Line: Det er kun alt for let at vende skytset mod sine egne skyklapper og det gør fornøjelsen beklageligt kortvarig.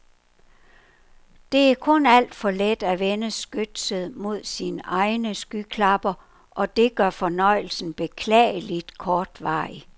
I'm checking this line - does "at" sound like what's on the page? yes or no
yes